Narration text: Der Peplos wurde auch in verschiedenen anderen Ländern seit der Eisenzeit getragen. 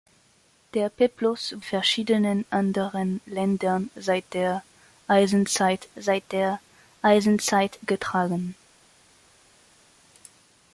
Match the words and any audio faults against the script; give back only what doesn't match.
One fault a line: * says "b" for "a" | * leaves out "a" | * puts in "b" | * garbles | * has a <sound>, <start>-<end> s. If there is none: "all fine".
* says "verschiedenen anderen Ländern seit der Eisenzeit" for "wurde auch in verschiedenen anderen Ländern"